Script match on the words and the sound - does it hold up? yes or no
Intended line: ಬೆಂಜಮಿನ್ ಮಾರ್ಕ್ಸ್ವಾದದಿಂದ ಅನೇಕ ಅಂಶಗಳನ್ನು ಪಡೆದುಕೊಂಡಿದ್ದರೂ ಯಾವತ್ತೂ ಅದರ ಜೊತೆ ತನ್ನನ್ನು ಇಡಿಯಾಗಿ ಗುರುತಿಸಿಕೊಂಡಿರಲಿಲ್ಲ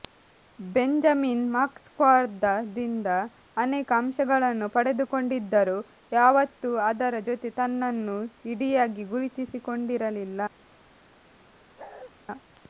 no